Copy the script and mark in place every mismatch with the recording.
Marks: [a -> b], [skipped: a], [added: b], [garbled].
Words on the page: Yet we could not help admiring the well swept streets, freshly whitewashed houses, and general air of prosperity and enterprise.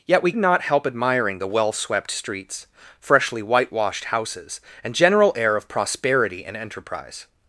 Yet we [skipped: could] not help admiring the well swept streets, freshly whitewashed houses, and general air of prosperity and enterprise.